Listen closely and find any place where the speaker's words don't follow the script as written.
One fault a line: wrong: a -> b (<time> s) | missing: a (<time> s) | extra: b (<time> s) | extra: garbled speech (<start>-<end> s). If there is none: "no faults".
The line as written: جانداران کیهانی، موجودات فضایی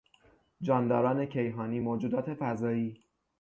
no faults